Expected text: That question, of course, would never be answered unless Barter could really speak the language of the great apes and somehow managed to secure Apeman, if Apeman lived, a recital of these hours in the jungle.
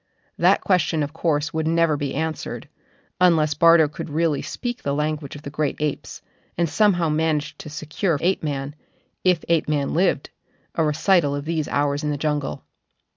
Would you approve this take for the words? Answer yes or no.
yes